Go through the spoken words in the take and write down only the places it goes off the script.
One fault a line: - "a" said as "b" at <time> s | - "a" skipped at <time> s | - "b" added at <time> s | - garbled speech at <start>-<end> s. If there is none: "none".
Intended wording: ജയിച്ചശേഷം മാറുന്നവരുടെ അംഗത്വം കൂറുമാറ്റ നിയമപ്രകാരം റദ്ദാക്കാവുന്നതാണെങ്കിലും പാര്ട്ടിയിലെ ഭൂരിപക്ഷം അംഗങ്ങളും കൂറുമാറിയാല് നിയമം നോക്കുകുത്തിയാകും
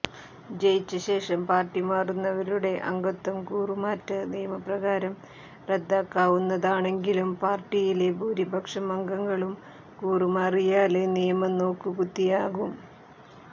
- "പാര്ട്ടി" added at 1.5 s